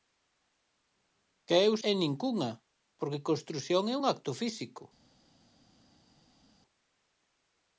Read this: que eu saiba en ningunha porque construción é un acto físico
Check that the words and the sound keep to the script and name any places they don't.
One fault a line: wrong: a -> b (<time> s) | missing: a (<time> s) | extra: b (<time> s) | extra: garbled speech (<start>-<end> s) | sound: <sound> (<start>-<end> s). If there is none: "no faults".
missing: saiba (1.7 s)